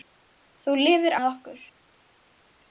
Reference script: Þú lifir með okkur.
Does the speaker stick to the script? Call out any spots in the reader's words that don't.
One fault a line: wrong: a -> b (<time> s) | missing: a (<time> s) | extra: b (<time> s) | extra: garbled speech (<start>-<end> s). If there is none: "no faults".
no faults